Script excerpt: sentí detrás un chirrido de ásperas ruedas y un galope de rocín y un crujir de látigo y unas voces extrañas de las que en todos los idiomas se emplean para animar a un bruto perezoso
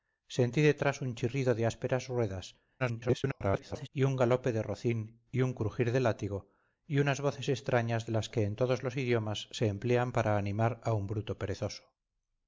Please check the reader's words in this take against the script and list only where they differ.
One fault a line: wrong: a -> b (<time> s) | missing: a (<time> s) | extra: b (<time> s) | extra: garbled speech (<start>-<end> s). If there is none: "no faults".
extra: garbled speech (2.8-3.9 s)